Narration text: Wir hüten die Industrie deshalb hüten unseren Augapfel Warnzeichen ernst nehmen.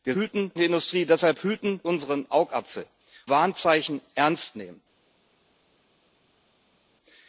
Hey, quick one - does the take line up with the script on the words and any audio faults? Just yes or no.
yes